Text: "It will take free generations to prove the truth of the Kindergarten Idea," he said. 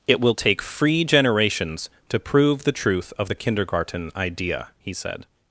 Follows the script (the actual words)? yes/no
yes